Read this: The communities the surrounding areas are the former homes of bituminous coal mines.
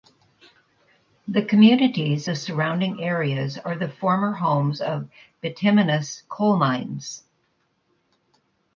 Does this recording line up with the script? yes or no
yes